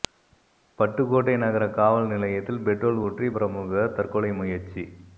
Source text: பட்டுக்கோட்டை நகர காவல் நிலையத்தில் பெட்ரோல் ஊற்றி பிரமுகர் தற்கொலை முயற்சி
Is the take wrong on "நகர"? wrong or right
right